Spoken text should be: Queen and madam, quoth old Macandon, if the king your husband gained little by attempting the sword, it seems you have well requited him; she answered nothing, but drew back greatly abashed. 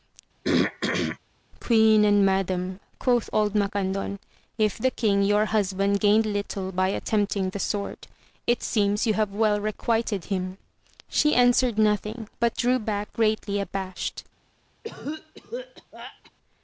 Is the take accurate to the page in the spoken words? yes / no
yes